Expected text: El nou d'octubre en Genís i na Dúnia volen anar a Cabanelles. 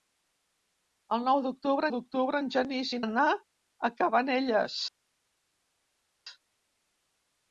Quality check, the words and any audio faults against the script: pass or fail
fail